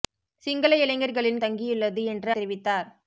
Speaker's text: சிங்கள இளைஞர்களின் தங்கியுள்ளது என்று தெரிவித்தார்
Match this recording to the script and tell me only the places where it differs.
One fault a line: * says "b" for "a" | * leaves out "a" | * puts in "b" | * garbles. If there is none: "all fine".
all fine